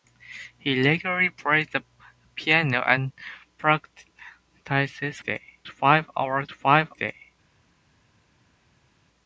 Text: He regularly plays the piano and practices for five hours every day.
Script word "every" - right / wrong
wrong